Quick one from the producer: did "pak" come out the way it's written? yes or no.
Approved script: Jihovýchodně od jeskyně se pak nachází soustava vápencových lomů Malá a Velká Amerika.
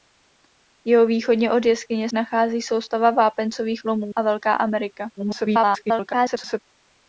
no